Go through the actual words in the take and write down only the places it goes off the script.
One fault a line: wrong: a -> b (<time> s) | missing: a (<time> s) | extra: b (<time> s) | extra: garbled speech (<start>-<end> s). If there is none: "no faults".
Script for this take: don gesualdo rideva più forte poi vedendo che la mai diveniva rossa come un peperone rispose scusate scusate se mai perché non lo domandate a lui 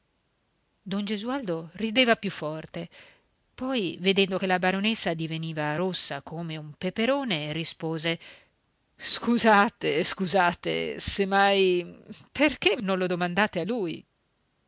wrong: mai -> baronessa (4.6 s)